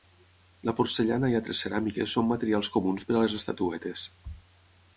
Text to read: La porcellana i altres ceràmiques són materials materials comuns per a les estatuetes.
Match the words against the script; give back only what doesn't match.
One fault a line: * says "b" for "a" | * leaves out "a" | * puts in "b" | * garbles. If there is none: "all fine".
* leaves out "materials"